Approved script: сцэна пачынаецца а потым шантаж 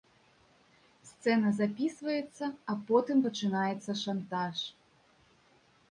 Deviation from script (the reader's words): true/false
true